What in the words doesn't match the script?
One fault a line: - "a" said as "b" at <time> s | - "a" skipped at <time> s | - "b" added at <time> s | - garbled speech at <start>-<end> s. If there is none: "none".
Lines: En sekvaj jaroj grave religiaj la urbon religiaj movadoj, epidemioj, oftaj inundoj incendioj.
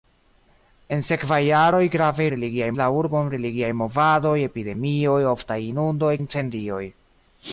none